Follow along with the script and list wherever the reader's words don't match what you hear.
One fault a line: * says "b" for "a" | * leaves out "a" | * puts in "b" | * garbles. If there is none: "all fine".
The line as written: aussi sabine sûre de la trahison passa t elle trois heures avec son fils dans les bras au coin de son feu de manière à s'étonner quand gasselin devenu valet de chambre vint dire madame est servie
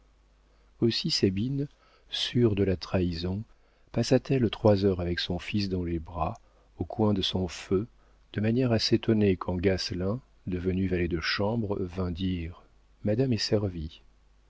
all fine